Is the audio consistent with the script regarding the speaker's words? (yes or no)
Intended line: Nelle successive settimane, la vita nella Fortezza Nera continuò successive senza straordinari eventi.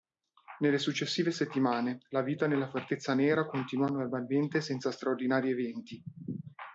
no